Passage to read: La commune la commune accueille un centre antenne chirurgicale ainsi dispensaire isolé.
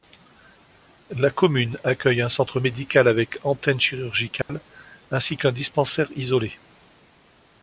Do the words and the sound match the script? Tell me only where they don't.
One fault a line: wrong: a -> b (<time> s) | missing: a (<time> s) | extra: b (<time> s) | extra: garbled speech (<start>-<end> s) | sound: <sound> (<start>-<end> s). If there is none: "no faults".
missing: la commune (1.8 s)
extra: médical avec (2.6 s)
sound: dropout (4.4-4.5 s)
extra: qu'un (5.4 s)